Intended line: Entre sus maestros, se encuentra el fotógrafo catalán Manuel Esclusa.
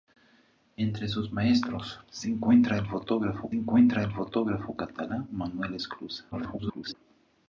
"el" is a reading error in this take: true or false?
false